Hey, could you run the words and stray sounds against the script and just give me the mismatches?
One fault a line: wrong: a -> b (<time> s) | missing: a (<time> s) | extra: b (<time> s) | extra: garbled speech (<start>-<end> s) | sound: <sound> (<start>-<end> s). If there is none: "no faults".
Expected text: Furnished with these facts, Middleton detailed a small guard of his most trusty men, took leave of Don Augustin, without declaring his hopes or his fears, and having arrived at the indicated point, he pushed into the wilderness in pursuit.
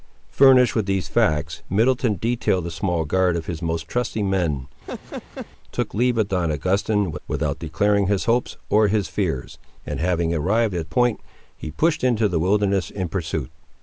sound: laugh (4.8-5.5 s)
missing: the indicated (10.9 s)